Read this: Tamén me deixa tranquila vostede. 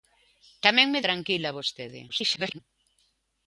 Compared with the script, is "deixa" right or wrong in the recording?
wrong